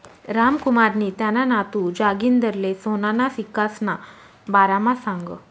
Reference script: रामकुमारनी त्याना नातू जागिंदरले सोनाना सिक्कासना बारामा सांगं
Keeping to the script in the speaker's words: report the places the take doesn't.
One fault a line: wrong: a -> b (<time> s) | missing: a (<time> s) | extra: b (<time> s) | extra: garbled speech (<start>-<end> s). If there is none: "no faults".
no faults